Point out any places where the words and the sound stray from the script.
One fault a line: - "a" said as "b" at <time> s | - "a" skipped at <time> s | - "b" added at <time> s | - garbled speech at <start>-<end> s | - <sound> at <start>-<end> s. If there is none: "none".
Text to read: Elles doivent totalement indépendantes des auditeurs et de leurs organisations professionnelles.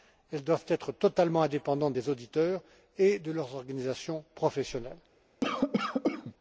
- "être" added at 0.7 s
- cough at 5.4-6.3 s